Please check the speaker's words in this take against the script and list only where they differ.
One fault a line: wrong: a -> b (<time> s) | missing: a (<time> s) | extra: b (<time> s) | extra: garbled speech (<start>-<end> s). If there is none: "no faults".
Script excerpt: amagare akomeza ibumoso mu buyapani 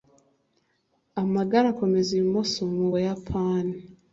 no faults